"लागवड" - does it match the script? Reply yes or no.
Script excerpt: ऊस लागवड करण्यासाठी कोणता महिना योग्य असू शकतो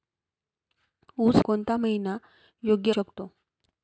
no